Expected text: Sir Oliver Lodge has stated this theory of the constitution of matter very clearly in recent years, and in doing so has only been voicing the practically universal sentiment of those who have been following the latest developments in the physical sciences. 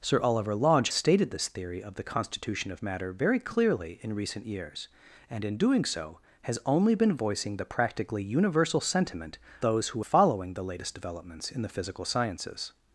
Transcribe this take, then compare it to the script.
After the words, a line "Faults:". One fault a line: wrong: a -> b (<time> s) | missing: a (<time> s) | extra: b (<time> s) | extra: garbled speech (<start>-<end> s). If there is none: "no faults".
Sir Oliver Lodge stated this theory of the constitution of matter very clearly in recent years, and in doing so has only been voicing the practically universal sentiment those who following the latest developments in the physical sciences.
Faults:
missing: has (0.9 s)
missing: of (9.4 s)
missing: have been (10.0 s)